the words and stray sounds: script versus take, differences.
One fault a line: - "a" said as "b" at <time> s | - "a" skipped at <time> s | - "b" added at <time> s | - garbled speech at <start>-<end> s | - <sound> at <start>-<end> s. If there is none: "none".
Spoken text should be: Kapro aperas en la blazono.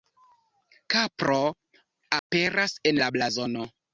- dropout at 2.2-2.3 s